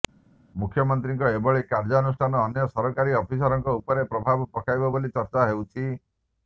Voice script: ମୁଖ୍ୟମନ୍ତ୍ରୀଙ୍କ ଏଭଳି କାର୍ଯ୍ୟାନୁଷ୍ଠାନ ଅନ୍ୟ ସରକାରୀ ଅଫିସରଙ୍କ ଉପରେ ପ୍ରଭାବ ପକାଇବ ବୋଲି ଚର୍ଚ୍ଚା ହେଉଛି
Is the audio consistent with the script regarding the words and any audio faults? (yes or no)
yes